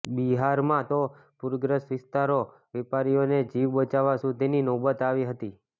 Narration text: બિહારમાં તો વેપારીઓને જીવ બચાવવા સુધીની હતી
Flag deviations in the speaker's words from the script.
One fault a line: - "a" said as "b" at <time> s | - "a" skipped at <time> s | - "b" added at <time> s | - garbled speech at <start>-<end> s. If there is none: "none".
- "પૂરગ્રસ્ત વિસ્તારોમાં" added at 1.4 s
- "નોબત આવી" added at 4.7 s